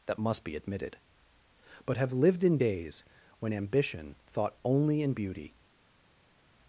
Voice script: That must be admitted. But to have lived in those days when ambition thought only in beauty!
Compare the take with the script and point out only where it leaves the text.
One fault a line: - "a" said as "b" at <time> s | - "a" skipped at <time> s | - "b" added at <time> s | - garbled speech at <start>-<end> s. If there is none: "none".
- "to" skipped at 2.0 s
- "those" skipped at 2.6 s